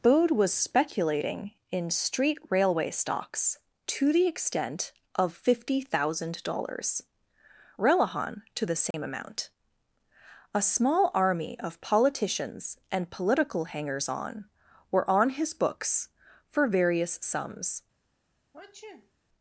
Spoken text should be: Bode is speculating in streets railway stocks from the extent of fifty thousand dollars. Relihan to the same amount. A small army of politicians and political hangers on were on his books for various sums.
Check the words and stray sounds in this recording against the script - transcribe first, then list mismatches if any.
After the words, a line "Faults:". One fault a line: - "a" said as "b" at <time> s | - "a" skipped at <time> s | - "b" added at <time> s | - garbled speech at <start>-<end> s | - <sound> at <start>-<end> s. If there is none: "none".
Bode was speculating in street railway stocks to the extent of fifty thousand dollars. Relihan to the same amount. A small army of politicians and political hangers on were on his books for various sums.
Faults:
- "is" said as "was" at 0.3 s
- "streets" said as "street" at 1.9 s
- "from" said as "to" at 3.9 s
- dropout at 8.9-8.9 s
- sneeze at 18.5-19.1 s